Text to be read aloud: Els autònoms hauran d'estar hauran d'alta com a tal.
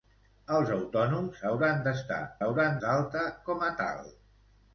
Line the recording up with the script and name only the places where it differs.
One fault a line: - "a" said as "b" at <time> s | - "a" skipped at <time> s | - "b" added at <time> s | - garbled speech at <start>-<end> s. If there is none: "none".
none